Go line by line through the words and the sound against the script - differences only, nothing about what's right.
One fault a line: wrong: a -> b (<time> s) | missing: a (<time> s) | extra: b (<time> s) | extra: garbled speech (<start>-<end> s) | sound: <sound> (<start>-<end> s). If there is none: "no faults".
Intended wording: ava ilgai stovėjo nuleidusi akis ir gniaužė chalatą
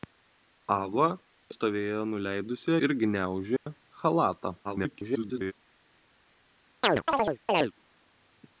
missing: ilgai (1.1 s)
missing: akis (2.8 s)
sound: dropout (3.6-3.7 s)
extra: garbled speech (4.6-5.5 s)
sound: chirp (6.8-7.7 s)